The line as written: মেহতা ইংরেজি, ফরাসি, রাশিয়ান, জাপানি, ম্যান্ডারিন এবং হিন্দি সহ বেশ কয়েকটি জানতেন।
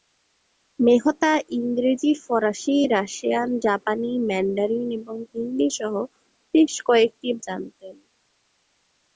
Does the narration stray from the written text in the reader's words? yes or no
no